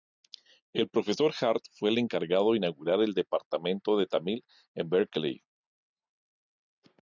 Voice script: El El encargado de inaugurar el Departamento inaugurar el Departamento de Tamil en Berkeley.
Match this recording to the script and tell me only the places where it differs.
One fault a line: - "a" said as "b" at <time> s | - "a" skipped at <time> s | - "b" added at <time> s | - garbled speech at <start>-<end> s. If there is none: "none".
- "Profesor Hart fue" added at 0.9 s
- "inaugurar el Departamento" skipped at 4.0 s